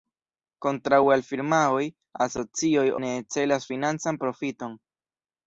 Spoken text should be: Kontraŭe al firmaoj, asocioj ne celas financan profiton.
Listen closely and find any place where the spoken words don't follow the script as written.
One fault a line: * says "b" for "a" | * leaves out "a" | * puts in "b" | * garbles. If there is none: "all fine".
all fine